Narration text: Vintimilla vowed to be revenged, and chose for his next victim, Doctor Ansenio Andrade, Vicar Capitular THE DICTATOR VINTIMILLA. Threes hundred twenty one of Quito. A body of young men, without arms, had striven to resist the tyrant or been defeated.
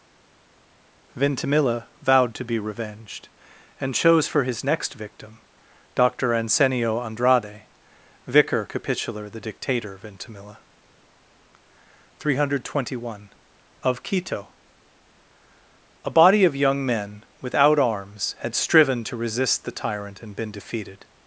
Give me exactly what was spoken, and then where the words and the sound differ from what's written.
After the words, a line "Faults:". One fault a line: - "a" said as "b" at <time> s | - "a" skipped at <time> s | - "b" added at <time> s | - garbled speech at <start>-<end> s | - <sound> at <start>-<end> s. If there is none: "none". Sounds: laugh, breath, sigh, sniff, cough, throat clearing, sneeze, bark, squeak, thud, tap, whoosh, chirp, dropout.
Vintimilla vowed to be revenged, and chose for his next victim, Doctor Ansenio Andrade, Vicar Capitular THE DICTATOR VINTIMILLA. Three hundred twenty one of Quito. A body of young men, without arms, had striven to resist the tyrant and been defeated.
Faults:
- "Threes" said as "Three" at 12.2 s
- "or" said as "and" at 20.2 s